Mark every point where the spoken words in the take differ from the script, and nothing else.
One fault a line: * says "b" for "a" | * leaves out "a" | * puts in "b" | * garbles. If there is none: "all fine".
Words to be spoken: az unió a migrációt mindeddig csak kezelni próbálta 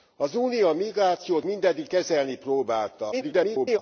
* leaves out "csak"
* garbles